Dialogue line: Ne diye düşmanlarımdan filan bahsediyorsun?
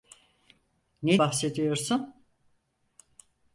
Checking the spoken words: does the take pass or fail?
fail